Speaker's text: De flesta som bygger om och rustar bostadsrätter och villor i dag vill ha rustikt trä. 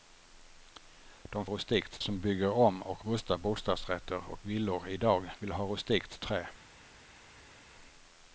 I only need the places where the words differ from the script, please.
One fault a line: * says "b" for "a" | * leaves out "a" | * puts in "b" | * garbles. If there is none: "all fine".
* says "rustikt" for "flesta"